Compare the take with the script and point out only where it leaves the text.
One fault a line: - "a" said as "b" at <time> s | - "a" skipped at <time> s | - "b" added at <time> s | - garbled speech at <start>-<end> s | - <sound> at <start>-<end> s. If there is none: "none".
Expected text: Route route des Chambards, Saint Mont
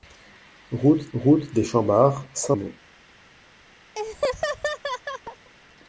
- laugh at 4.0-5.5 s